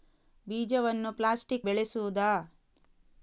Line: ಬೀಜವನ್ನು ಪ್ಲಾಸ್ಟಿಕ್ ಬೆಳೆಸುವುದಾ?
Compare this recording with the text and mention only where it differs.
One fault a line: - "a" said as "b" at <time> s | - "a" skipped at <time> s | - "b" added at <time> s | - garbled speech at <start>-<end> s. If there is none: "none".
none